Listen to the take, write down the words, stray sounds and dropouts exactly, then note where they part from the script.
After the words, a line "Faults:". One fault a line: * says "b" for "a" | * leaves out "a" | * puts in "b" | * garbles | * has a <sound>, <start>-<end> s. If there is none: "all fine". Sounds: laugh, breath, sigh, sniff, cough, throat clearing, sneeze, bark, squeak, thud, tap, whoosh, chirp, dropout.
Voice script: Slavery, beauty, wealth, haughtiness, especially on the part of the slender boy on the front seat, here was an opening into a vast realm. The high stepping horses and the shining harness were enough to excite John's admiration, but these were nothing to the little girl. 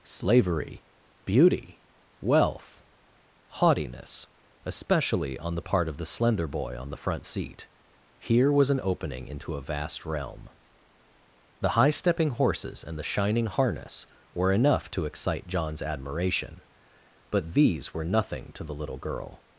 Slavery, beauty, wealth, haughtiness, especially on the part of the slender boy on the front seat, here was an opening into a vast realm. The high stepping horses and the shining harness were enough to excite John's admiration, but these were nothing to the little girl.
Faults:
all fine